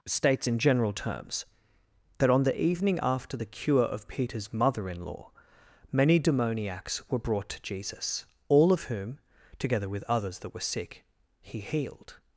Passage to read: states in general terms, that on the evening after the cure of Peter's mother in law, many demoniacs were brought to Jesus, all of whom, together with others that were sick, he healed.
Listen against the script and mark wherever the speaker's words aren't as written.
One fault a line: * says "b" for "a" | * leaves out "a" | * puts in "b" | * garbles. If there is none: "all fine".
all fine